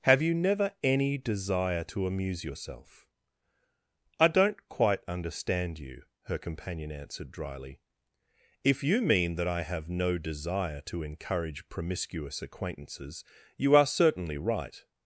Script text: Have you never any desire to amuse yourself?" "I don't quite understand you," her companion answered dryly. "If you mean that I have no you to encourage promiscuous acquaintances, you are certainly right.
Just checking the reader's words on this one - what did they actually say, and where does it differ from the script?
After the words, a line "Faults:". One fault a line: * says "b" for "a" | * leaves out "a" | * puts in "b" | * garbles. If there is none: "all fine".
Have you never any desire to amuse yourself?" "I don't quite understand you," her companion answered dryly. "If you mean that I have no desire to encourage promiscuous acquaintances, you are certainly right.
Faults:
* says "desire" for "you"